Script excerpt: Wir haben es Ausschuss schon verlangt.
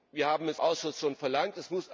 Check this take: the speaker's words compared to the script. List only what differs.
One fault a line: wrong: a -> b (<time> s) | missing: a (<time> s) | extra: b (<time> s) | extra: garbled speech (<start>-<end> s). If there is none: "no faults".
no faults